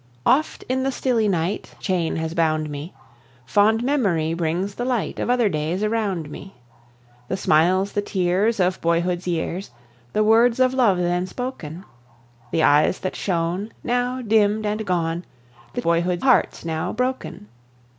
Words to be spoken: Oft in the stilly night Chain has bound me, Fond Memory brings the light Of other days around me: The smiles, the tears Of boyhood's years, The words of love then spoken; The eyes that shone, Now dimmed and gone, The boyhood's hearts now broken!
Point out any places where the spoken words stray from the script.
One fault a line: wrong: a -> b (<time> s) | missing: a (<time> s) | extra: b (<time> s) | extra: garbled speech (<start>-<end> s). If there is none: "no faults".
no faults